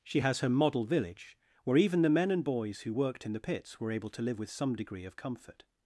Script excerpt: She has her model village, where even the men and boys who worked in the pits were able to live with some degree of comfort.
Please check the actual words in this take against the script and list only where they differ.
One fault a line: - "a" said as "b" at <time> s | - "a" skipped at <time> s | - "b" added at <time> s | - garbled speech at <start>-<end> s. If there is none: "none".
none